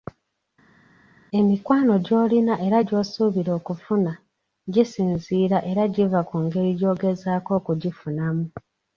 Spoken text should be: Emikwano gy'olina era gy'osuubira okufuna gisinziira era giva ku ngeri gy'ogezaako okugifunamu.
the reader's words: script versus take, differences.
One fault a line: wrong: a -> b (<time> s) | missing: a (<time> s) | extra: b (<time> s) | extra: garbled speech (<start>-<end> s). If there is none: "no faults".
no faults